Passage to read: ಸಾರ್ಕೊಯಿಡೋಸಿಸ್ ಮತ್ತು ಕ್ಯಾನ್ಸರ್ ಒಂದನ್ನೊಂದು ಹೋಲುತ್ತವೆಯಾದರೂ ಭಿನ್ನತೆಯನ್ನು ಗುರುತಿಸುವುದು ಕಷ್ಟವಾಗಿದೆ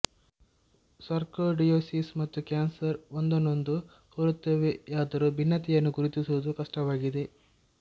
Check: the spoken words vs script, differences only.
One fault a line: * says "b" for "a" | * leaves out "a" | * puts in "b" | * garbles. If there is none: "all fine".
all fine